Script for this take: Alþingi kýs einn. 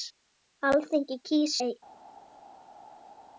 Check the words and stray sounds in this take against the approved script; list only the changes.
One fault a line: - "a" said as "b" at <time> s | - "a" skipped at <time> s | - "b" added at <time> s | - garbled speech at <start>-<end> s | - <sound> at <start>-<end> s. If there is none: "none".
none